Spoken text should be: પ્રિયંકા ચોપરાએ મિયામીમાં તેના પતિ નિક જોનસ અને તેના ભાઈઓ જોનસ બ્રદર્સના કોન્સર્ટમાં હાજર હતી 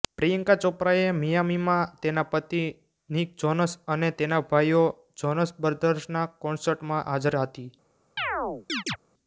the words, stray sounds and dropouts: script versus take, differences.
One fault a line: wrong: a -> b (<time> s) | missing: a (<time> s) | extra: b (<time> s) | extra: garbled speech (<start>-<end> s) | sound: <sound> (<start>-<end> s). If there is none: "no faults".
sound: chirp (8.2-9.0 s)